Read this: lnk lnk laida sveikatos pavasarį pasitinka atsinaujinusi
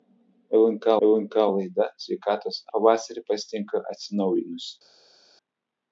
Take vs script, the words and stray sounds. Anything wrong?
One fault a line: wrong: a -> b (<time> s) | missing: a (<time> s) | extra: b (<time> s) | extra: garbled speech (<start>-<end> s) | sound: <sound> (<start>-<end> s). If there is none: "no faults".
no faults